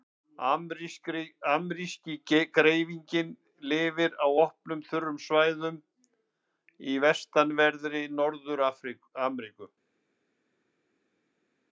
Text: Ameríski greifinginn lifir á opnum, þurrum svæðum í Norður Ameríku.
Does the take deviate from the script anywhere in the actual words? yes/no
yes